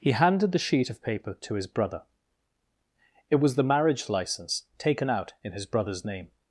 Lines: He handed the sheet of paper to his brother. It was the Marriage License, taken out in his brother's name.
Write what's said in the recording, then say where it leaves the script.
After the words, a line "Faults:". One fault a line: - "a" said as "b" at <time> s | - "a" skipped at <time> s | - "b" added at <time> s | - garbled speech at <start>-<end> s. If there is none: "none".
He handed the sheet of paper to his brother. It was the Marriage License, taken out in his brother's name.
Faults:
none